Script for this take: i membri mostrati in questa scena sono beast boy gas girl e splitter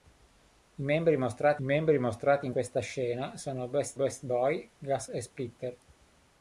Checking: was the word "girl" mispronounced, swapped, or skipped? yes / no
yes